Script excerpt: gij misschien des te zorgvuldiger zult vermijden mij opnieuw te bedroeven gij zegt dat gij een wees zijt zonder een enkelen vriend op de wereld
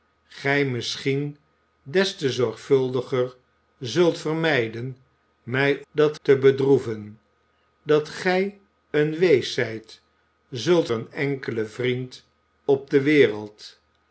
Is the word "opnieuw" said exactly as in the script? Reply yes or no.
no